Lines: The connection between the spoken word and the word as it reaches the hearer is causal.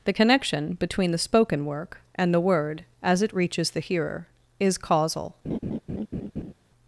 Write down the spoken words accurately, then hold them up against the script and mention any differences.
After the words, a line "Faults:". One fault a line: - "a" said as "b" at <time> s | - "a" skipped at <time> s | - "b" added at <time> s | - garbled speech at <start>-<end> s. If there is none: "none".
The connection between the spoken work and the word as it reaches the hearer is causal.
Faults:
- "word" said as "work" at 1.6 s